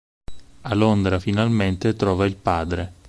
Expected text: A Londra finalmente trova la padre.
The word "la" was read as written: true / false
false